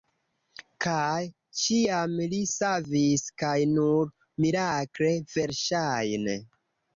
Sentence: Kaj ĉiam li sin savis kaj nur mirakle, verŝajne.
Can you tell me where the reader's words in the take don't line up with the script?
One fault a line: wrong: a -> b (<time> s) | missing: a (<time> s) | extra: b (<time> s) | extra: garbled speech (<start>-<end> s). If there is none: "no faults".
missing: sin (2.4 s)